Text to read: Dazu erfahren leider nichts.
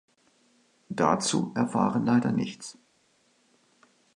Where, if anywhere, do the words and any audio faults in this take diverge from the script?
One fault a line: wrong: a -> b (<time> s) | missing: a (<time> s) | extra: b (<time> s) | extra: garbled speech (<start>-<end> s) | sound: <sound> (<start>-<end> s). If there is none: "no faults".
no faults